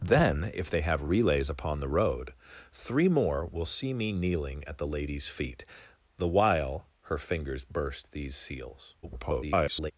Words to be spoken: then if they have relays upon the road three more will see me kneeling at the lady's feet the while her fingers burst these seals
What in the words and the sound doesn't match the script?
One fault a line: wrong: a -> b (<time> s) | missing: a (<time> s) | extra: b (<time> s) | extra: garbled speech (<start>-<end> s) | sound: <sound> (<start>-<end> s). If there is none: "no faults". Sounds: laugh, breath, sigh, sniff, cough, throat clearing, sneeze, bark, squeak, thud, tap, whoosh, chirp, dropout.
extra: garbled speech (9.0-9.9 s)